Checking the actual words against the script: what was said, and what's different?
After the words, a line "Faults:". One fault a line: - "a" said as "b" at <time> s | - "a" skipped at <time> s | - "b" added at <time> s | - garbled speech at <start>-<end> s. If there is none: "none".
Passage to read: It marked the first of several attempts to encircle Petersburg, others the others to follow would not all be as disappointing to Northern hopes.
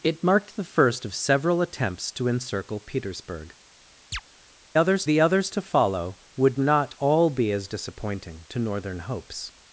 It marked the first of several attempts to encircle Petersburg, others the others to follow would not all be as disappointing to Northern hopes.
Faults:
none